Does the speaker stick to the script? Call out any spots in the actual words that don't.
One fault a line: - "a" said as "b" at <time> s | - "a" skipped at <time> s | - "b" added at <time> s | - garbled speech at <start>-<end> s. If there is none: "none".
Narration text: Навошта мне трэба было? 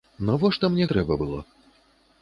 none